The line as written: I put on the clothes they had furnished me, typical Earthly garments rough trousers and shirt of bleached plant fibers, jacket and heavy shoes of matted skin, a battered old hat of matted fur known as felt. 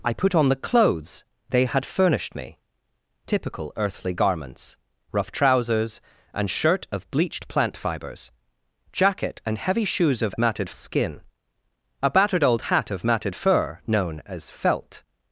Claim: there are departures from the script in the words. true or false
false